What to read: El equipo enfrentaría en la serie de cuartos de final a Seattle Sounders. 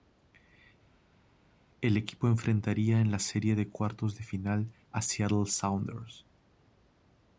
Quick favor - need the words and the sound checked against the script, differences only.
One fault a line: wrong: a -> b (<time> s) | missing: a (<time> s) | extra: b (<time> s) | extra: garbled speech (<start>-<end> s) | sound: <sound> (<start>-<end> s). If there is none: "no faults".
no faults